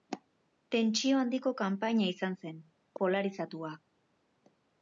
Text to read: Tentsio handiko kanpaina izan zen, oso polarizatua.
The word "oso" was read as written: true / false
false